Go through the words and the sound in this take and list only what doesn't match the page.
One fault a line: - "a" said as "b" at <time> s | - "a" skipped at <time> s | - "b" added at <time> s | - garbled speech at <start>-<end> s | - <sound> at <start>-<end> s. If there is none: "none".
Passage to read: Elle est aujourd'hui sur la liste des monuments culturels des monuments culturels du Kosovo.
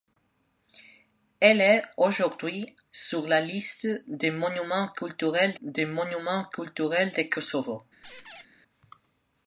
- squeak at 8.0-8.5 s